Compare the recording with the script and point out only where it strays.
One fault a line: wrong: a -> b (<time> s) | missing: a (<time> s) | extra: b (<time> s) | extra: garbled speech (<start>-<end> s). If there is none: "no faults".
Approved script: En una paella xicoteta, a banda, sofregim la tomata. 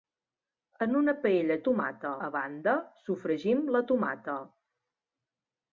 wrong: xicoteta -> tomata (1.7 s)